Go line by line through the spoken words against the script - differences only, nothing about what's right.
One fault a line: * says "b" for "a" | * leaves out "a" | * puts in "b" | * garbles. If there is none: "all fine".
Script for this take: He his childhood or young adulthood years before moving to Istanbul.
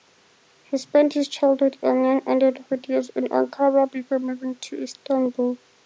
* puts in "spent"
* says "and" for "or"
* puts in "in Ankara"